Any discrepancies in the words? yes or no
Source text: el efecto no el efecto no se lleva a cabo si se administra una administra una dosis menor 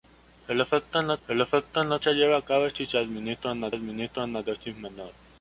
no